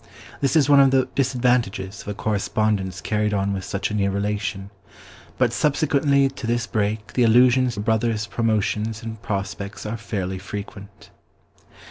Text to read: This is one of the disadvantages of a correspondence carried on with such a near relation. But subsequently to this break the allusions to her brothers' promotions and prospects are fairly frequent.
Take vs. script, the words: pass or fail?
fail